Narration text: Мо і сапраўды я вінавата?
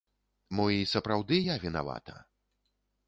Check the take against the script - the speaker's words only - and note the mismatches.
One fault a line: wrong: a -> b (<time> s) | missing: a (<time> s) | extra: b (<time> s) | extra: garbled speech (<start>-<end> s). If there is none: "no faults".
no faults